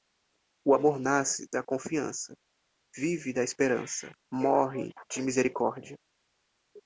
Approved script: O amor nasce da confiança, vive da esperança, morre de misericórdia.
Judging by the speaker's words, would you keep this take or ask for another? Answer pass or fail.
pass